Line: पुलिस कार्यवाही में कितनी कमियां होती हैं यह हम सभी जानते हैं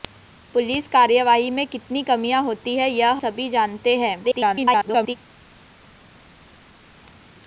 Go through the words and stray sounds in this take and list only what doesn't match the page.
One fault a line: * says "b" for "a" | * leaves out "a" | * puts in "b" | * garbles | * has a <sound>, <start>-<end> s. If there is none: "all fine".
* leaves out "हम"
* garbles